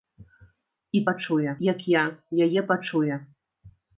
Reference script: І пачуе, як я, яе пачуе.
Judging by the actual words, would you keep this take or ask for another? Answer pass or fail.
pass